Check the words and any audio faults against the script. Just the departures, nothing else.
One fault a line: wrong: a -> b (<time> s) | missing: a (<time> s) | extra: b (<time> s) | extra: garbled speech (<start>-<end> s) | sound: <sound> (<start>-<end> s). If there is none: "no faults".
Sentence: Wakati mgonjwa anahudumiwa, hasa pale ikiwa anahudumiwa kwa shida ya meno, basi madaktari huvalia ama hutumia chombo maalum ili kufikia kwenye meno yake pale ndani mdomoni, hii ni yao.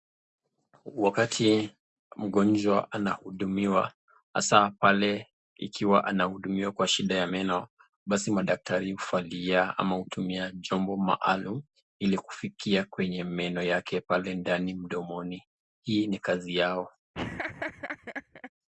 extra: kazi (16.2 s)
sound: laugh (17.1-18.5 s)